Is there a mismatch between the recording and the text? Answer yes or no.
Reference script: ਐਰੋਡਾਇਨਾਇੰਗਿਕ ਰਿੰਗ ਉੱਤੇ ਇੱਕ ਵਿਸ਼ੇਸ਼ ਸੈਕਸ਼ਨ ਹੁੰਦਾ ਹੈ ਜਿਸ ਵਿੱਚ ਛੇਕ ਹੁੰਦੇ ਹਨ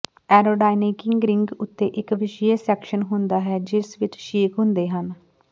no